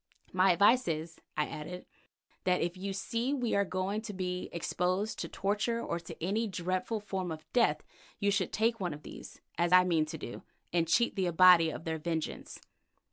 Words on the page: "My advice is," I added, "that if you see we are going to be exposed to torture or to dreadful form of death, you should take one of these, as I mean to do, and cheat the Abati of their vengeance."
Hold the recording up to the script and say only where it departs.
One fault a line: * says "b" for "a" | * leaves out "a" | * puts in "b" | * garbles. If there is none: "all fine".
* puts in "any"